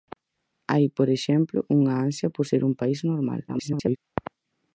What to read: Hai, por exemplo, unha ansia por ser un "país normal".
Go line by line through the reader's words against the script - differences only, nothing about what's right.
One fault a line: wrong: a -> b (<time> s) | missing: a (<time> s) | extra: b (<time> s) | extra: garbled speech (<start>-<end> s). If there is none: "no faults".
extra: garbled speech (3.5-4.0 s)